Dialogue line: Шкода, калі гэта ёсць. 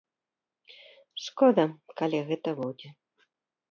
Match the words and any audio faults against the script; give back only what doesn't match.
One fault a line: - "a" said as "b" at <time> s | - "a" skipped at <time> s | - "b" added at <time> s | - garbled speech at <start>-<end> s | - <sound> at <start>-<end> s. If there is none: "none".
- "ёсць" said as "будзе" at 2.6 s